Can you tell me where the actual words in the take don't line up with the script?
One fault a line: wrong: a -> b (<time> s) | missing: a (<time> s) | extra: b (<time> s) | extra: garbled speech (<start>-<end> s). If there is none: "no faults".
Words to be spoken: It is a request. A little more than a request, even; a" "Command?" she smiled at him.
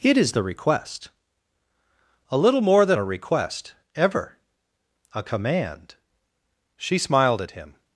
wrong: a -> the (0.3 s)
wrong: even -> ever (4.0 s)